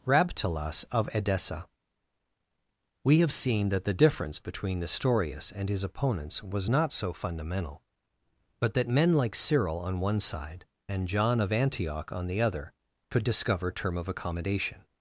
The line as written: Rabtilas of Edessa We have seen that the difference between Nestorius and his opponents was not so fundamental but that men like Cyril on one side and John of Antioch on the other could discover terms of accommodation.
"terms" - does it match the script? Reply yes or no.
no